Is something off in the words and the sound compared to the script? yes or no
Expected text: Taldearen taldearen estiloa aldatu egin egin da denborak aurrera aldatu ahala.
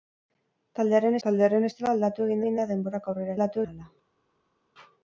no